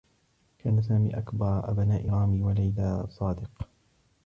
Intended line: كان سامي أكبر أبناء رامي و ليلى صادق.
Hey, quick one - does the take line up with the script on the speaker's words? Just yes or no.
yes